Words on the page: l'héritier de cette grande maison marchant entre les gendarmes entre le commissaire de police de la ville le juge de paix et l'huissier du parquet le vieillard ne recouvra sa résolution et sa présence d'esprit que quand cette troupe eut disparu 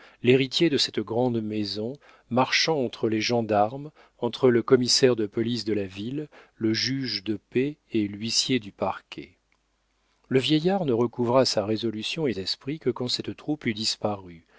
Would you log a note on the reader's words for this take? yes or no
yes